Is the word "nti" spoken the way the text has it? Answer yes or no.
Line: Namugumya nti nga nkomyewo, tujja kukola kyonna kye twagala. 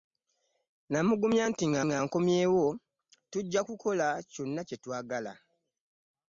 yes